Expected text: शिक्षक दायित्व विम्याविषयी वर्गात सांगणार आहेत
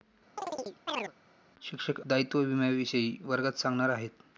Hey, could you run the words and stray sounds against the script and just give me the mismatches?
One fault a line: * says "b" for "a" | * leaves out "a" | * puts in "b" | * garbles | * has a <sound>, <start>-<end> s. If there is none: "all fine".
* has a chirp, 0.4-1.1 s